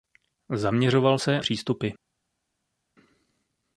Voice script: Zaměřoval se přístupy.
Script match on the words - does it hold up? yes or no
yes